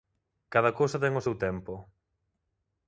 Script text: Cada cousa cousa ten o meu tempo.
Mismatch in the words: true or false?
true